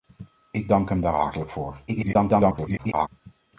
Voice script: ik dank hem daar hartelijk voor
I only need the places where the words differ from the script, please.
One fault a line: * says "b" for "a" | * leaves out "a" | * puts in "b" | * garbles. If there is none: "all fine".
* garbles